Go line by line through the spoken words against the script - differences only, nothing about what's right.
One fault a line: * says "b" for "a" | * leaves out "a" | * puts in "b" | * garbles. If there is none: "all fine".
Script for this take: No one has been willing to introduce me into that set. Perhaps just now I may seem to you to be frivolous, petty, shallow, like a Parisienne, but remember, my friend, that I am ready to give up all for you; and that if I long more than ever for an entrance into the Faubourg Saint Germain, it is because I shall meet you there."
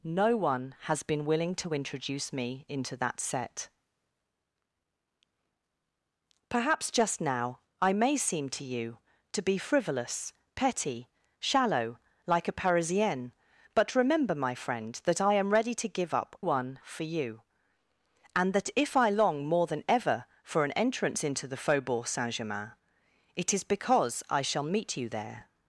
* says "one" for "all"